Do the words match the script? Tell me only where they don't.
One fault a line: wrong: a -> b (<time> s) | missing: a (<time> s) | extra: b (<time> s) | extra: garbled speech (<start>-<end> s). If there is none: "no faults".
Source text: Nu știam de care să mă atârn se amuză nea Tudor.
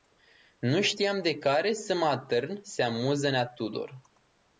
no faults